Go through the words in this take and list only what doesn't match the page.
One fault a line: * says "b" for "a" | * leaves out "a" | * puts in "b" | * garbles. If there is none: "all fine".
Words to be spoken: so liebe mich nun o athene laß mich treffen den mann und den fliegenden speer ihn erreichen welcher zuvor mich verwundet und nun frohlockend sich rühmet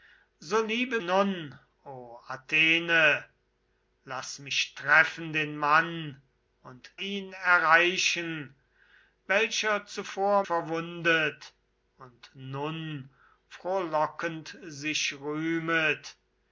* leaves out "mich"
* leaves out "den fliegenden speer"
* leaves out "mich"